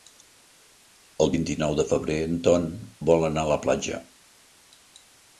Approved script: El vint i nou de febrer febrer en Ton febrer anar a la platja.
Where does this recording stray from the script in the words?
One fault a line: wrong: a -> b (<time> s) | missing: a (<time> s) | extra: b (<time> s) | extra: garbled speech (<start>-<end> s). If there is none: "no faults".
missing: febrer (2.2 s)
wrong: febrer -> vol (3.1 s)